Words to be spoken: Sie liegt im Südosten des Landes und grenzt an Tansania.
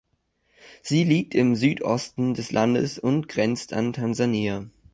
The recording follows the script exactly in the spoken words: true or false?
true